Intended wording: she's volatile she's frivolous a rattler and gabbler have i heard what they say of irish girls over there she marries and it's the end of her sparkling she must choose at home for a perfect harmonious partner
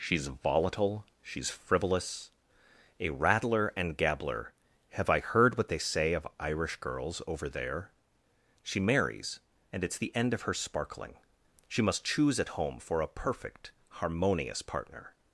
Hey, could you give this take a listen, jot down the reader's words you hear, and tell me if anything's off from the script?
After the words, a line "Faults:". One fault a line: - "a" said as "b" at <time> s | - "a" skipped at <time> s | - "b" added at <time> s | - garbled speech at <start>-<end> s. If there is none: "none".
she's volatile she's frivolous a rattler and gabbler have i heard what they say of irish girls over there she marries and it's the end of her sparkling she must choose at home for a perfect harmonious partner
Faults:
none